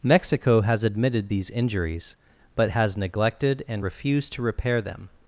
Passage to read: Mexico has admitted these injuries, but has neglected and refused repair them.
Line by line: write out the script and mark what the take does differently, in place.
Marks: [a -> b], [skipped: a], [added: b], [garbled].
Mexico has admitted these injuries, but has neglected and refused [added: to] repair them.